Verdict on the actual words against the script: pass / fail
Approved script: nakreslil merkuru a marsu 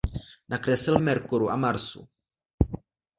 pass